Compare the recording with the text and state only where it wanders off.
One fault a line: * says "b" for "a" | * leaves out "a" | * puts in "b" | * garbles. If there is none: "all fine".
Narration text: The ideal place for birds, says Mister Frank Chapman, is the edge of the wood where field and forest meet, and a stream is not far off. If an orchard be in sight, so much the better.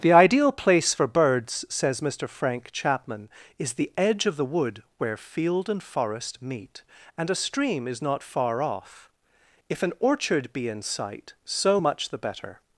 all fine